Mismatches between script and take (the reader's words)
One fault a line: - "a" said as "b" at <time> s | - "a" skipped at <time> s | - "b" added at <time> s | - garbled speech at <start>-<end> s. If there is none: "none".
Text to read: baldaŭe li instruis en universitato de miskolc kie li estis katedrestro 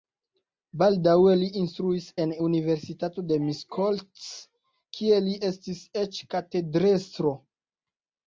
- "eĉ" added at 6.0 s